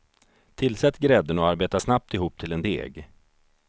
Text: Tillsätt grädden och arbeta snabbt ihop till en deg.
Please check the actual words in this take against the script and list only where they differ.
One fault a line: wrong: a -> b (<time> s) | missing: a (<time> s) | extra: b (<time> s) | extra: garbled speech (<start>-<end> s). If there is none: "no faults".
no faults